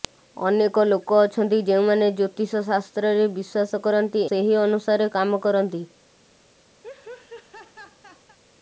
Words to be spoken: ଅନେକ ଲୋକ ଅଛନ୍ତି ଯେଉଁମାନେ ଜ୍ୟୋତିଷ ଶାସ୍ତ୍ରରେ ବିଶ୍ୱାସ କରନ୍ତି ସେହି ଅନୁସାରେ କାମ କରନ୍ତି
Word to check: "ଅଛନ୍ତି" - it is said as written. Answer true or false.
true